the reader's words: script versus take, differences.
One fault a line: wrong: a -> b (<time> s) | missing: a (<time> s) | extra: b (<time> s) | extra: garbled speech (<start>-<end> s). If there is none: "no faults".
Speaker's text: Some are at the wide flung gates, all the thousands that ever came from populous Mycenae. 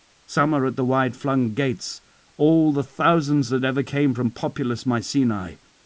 no faults